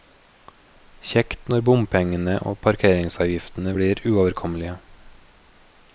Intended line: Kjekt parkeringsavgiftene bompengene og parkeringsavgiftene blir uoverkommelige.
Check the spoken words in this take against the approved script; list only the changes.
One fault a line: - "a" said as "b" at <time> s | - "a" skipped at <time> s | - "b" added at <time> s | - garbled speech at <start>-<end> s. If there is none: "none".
- "parkeringsavgiftene" said as "når" at 1.5 s